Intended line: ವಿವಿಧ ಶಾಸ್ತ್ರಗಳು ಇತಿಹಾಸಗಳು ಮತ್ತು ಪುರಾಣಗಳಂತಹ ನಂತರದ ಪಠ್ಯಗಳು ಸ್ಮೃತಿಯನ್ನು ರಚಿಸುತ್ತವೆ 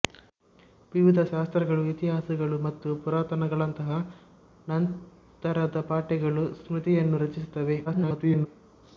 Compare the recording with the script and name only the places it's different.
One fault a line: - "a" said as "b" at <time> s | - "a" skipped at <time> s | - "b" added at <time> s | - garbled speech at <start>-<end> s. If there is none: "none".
- garbled speech at 7.9-8.5 s